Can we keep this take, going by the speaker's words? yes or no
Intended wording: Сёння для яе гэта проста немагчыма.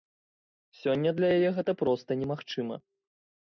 yes